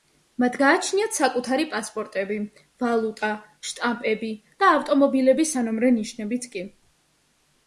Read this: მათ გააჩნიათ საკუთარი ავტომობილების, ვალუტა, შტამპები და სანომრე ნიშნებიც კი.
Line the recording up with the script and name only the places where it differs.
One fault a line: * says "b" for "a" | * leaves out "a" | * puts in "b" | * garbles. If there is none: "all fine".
* says "პასპორტები" for "ავტომობილების"
* puts in "ავტომობილების"